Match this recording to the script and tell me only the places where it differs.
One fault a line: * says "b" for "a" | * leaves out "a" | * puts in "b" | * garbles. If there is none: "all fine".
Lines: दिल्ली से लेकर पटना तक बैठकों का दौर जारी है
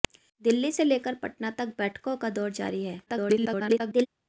* garbles